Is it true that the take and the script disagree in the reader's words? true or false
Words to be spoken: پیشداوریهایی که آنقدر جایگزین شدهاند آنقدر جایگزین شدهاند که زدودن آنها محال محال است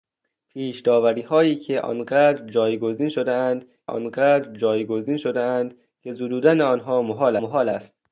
false